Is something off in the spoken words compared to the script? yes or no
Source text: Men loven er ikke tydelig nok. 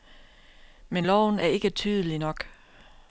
no